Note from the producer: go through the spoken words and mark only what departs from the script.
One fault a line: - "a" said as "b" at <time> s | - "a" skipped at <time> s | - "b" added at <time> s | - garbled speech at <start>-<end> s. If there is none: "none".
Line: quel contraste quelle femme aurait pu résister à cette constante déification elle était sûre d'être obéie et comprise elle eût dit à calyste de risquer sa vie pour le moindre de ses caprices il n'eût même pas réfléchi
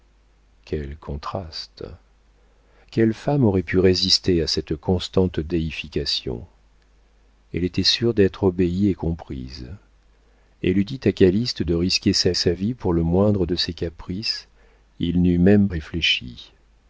- "sa" added at 12.3 s
- "pas" skipped at 15.7 s